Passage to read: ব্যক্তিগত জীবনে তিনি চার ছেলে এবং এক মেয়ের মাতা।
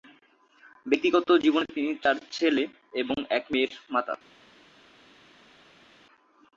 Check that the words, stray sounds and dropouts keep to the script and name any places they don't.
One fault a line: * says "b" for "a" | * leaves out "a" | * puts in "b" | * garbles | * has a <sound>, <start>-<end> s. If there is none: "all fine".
all fine